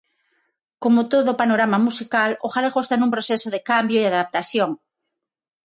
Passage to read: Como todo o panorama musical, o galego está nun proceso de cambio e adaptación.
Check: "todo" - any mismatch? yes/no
no